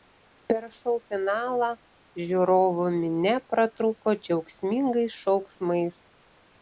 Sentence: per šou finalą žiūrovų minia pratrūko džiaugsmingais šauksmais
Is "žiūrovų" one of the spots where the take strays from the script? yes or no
no